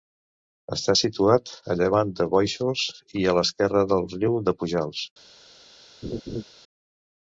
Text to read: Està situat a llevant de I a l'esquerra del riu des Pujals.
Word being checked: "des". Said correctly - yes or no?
no